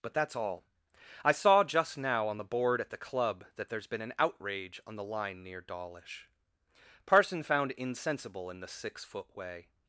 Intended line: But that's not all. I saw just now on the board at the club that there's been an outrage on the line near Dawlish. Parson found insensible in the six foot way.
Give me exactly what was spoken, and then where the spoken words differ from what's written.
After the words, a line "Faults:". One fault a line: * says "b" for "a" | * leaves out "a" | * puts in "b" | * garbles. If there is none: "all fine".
But that's all. I saw just now on the board at the club that there's been an outrage on the line near Dawlish. Parson found insensible in the six foot way.
Faults:
* leaves out "not"